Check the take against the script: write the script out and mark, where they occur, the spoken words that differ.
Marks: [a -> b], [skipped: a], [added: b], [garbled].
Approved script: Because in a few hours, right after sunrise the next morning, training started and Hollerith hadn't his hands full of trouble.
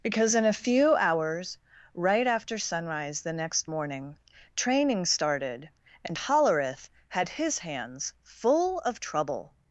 Because in a few hours, right after sunrise the next morning, training started and Hollerith [hadn't -> had] his hands full of trouble.